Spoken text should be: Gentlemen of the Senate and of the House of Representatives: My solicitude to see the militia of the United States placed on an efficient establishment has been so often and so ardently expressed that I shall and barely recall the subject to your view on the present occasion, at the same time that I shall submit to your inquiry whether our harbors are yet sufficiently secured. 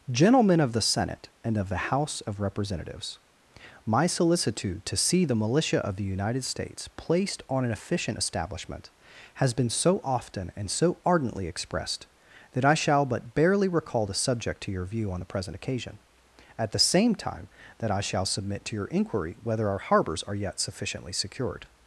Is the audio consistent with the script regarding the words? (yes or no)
no